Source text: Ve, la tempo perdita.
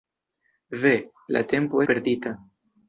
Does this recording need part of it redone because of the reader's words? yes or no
no